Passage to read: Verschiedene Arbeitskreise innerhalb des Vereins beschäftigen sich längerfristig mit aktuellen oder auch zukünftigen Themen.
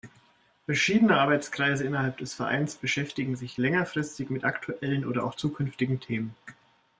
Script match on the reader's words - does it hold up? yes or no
yes